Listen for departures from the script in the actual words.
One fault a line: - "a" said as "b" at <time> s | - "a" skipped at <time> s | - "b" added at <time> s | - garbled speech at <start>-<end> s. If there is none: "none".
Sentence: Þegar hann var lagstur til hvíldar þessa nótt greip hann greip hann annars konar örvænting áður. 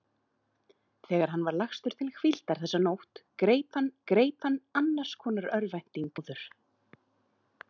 none